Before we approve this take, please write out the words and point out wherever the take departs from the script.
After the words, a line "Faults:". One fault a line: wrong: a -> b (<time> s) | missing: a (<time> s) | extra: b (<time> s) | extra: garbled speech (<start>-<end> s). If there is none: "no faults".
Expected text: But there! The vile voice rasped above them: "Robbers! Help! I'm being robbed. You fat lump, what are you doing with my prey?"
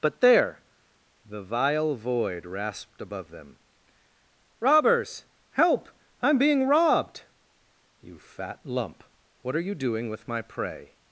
But there! The vile void rasped above them: "Robbers! Help! I'm being robbed. You fat lump, what are you doing with my prey?"
Faults:
wrong: voice -> void (1.9 s)